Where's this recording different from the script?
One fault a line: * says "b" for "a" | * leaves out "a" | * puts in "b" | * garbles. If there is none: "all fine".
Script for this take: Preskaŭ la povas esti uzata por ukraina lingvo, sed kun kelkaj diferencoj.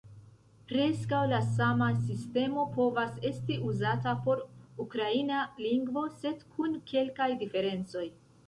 * puts in "sama sistemo"